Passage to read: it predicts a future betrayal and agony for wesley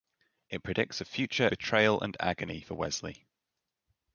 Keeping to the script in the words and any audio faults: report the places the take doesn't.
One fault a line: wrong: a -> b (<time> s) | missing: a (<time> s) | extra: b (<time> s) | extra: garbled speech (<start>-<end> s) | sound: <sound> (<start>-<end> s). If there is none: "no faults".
no faults